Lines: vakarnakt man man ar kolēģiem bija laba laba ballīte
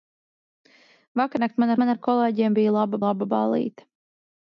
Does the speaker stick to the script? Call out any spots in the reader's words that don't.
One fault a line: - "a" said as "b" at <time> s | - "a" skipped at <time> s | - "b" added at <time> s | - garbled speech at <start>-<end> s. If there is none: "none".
none